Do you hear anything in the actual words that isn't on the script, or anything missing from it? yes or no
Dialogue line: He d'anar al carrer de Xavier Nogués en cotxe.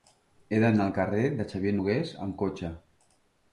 yes